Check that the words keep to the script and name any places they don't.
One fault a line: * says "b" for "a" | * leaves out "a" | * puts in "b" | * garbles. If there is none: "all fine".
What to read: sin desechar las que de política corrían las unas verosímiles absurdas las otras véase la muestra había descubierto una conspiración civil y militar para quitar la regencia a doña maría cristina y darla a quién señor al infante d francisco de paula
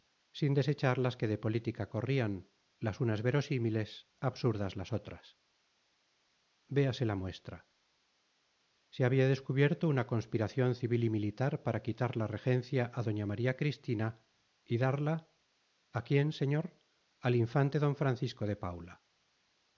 * puts in "se"